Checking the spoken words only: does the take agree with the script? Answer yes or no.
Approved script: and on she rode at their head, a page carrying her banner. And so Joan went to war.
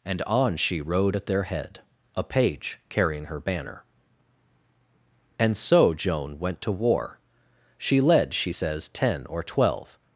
no